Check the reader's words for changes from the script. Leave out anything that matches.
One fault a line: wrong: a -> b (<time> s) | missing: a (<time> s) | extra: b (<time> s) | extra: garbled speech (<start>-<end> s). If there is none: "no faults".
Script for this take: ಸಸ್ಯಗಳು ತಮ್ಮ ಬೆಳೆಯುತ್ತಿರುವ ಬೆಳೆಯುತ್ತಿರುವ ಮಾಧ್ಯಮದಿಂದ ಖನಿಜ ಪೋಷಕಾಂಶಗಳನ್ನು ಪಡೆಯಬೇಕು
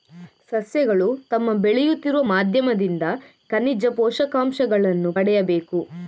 missing: ಬೆಳೆಯುತ್ತಿರುವ (2.2 s)